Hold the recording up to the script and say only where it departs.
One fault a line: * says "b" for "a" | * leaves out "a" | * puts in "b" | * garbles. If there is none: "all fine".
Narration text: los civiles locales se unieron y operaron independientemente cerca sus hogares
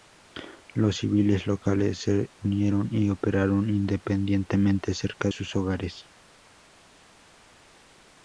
all fine